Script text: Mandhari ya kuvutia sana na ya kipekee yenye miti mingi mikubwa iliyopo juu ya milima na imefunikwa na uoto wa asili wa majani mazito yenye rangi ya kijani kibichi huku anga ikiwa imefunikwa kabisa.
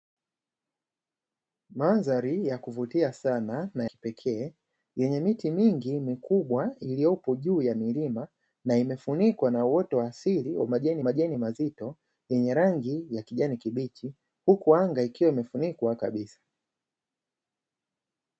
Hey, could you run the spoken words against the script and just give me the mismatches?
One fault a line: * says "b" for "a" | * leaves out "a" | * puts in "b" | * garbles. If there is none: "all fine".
* leaves out "ya"
* puts in "majani"